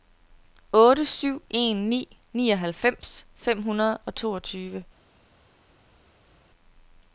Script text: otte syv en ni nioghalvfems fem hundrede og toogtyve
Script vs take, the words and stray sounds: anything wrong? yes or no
no